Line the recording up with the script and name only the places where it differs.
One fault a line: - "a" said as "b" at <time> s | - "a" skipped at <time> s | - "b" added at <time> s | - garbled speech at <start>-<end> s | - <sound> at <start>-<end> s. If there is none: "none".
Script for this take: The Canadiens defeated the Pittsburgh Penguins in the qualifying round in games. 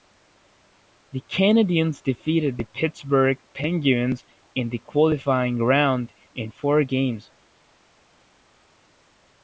- "four" added at 6.5 s